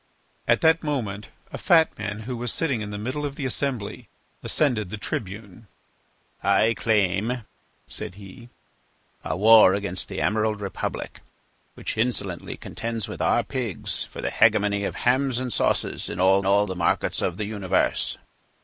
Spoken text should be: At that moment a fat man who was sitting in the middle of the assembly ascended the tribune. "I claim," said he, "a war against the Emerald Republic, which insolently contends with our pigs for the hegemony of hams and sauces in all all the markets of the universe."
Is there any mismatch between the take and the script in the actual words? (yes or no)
no